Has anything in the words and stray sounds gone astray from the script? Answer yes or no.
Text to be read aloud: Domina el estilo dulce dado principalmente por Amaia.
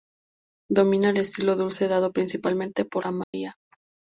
yes